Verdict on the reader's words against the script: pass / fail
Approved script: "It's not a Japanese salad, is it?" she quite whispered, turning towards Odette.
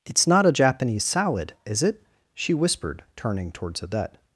fail